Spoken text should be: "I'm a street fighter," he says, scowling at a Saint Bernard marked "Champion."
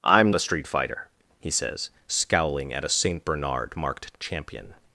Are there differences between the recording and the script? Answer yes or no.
no